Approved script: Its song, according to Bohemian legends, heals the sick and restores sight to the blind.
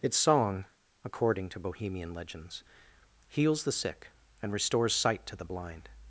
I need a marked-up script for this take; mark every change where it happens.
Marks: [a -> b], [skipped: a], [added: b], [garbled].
Its song, according to Bohemian legends, heals the sick and restores sight to the blind.